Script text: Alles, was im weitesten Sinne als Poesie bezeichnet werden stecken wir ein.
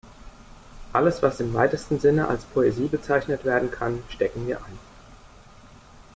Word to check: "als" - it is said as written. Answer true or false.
true